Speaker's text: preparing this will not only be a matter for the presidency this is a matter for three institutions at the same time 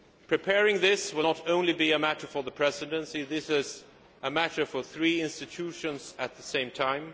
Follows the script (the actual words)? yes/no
yes